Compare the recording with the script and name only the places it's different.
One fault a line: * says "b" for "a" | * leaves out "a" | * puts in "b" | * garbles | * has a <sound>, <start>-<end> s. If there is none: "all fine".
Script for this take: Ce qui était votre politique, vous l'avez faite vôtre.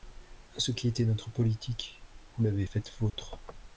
* says "notre" for "votre"
* has a dropout, 3.1-3.1 s